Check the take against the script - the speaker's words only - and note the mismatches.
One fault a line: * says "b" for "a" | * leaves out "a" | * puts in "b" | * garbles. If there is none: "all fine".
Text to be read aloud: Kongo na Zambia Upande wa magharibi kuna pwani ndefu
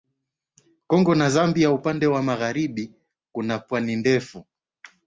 all fine